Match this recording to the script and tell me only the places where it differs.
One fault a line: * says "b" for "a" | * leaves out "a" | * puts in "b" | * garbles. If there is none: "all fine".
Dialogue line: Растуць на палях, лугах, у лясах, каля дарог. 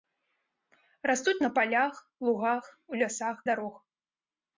* leaves out "каля"